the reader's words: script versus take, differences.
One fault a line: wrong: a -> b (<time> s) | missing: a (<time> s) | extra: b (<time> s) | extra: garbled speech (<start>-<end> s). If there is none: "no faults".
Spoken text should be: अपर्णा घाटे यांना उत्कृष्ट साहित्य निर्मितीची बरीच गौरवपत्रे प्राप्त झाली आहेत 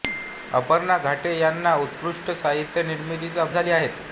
missing: बरीच गौरवपत्रे प्राप्त (3.4 s)